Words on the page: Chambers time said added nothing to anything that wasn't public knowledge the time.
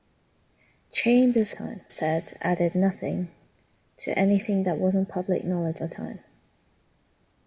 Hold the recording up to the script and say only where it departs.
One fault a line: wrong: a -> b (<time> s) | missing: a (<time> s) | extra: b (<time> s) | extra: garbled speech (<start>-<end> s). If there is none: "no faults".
no faults